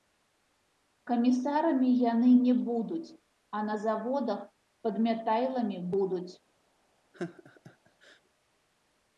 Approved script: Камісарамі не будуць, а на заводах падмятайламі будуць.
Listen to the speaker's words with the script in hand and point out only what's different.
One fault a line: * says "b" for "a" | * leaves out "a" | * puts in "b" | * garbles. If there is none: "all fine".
* puts in "яны"